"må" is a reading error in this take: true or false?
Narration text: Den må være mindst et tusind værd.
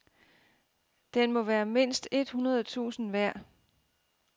false